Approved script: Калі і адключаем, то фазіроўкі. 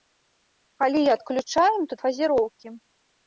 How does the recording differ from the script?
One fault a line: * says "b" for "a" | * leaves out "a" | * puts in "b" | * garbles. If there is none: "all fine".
all fine